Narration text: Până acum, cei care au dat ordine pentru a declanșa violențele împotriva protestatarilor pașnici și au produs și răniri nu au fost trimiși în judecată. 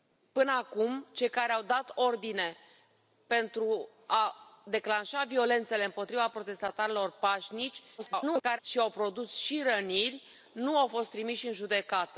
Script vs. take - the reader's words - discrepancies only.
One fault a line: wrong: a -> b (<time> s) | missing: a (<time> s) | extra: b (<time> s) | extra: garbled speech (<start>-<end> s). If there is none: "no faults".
extra: garbled speech (8.0-8.6 s)